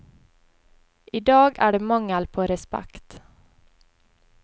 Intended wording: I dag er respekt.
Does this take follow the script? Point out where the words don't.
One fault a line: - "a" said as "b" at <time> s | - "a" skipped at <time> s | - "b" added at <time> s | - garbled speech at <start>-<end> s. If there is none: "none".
- "det mangel på" added at 1.7 s